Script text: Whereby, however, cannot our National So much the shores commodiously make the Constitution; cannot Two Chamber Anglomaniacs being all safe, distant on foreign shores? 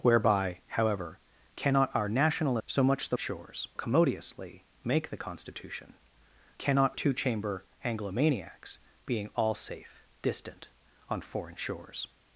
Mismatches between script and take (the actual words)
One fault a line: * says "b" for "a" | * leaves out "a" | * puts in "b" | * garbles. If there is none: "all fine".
all fine